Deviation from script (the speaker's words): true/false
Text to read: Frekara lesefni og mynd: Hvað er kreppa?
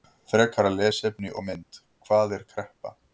false